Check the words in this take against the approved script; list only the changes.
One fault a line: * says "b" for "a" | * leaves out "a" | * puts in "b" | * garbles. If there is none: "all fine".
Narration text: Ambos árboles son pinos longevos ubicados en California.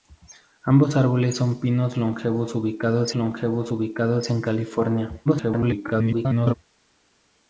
* puts in "longevos ubicados"
* garbles